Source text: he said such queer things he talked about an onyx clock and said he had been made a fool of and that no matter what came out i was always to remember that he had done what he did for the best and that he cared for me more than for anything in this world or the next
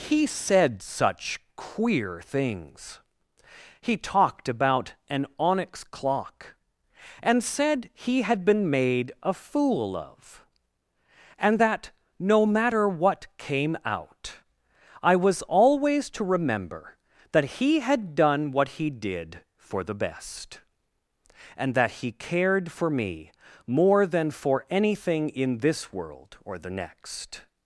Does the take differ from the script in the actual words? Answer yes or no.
no